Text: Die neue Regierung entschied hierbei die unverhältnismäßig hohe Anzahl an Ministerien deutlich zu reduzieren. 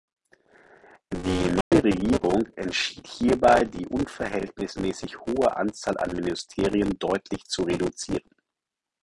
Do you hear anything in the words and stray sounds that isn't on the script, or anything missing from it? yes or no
yes